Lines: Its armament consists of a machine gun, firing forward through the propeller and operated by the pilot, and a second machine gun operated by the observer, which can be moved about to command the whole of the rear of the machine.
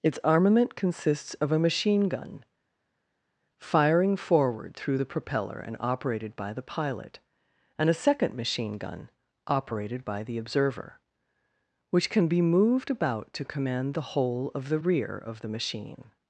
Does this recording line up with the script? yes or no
yes